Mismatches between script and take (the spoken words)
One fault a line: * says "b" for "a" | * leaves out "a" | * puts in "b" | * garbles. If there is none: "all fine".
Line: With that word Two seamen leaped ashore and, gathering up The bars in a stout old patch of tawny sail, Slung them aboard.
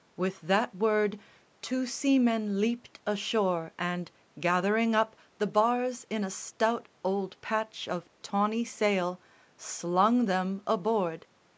all fine